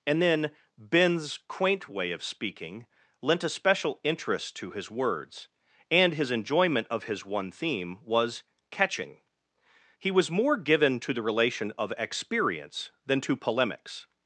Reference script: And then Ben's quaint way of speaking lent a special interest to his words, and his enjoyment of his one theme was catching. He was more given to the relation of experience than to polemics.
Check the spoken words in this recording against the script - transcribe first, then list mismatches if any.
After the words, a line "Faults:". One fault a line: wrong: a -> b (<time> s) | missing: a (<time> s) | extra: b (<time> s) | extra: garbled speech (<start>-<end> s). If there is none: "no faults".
And then Ben's quaint way of speaking lent a special interest to his words, and his enjoyment of his one theme was catching. He was more given to the relation of experience than to polemics.
Faults:
no faults